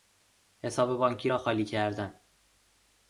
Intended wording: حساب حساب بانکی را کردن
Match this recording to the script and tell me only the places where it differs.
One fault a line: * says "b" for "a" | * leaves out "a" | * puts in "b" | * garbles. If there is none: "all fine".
* leaves out "حساب"
* puts in "خالی"